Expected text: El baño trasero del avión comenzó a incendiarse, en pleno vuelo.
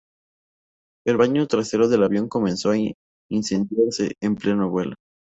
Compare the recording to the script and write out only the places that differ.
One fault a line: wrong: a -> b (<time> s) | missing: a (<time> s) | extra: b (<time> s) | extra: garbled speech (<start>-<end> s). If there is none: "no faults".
no faults